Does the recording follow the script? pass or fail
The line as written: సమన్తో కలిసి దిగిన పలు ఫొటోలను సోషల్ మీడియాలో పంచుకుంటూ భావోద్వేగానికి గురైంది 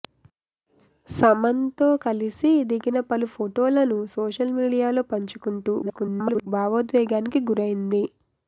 fail